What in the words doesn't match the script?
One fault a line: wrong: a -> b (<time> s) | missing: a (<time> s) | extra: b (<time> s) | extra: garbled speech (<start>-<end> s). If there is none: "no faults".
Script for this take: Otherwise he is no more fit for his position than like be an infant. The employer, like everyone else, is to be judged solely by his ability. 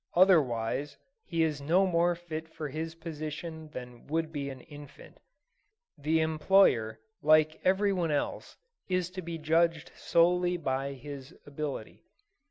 wrong: like -> would (4.1 s)